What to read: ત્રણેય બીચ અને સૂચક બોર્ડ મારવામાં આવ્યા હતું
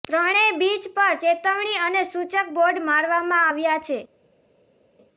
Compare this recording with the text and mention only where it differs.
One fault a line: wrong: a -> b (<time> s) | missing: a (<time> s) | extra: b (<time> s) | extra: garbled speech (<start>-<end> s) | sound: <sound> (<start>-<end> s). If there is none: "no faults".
extra: પર ચેતવણી (0.9 s)
wrong: હતું -> છે (3.8 s)